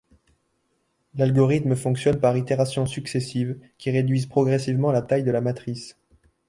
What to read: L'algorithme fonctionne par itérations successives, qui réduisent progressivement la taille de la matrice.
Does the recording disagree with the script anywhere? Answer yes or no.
no